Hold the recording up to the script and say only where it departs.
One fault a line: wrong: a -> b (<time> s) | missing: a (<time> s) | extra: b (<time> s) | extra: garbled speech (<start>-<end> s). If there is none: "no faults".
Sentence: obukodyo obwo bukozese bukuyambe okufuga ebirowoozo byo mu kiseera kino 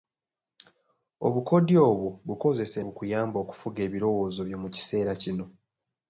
no faults